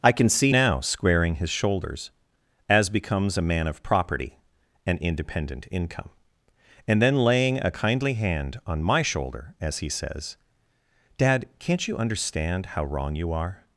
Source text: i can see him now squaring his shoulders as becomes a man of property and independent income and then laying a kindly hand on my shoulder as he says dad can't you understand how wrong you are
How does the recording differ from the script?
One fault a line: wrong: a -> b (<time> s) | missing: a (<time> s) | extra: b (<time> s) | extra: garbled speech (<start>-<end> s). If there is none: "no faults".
missing: him (0.5 s)